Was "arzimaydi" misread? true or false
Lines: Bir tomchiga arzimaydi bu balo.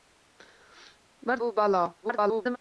true